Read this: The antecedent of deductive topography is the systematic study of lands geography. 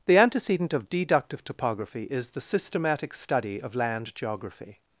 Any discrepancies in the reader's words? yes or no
yes